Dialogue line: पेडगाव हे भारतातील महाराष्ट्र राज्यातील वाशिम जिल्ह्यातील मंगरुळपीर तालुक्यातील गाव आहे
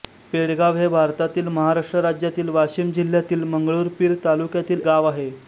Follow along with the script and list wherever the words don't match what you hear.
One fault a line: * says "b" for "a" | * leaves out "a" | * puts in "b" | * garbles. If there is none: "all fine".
all fine